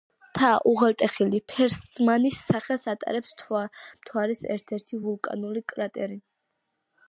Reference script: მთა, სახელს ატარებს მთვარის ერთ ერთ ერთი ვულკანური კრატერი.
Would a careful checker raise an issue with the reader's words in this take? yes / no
yes